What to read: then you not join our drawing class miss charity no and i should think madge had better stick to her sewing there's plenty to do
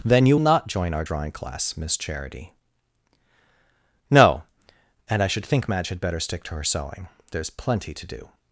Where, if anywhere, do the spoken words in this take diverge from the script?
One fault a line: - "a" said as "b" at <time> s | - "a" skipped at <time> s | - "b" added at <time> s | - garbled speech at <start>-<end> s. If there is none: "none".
none